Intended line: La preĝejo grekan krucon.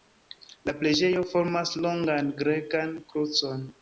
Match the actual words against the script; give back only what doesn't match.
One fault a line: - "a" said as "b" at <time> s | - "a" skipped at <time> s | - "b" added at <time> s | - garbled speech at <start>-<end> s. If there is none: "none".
- "formas longan" added at 1.3 s